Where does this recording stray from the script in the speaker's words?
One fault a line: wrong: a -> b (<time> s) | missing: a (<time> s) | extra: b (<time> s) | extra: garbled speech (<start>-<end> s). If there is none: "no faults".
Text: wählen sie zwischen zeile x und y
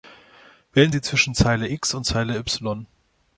extra: zeile (2.0 s)